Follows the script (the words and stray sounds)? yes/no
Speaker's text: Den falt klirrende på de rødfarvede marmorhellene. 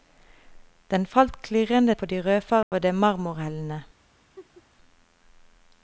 no